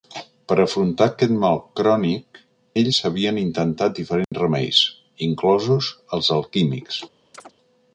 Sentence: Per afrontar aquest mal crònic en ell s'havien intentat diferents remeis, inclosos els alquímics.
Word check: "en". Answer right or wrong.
wrong